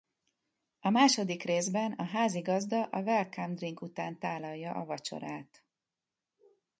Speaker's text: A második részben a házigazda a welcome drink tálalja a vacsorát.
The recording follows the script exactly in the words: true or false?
false